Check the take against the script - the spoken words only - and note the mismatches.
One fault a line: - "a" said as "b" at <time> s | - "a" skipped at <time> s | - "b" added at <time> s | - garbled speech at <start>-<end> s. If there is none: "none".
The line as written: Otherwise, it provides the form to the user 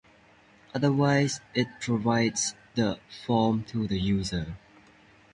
none